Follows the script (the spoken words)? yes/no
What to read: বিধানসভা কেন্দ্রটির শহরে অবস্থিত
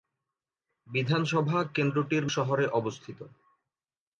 yes